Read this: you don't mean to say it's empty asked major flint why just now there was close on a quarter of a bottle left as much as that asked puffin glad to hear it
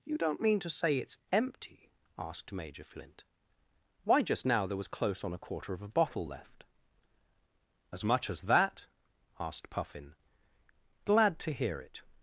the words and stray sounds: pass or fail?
pass